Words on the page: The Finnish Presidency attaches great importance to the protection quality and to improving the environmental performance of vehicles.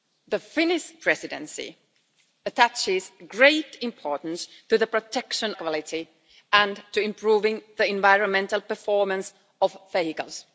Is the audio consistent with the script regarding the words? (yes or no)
yes